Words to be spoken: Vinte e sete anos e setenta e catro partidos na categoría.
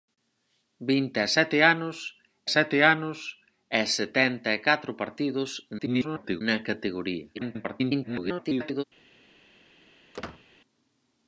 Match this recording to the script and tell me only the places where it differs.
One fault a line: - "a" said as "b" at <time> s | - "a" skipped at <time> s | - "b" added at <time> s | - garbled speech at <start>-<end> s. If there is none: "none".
- "sete anos" added at 2.5 s
- garbled speech at 5.8-6.4 s
- garbled speech at 7.3-8.8 s